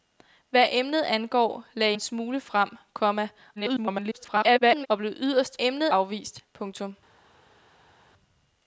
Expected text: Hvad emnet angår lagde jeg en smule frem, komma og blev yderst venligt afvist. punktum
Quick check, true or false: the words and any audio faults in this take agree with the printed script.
false